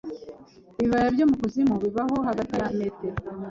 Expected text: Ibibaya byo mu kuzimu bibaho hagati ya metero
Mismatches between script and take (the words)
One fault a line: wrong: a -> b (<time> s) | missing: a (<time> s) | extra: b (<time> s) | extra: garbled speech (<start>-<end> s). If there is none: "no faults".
no faults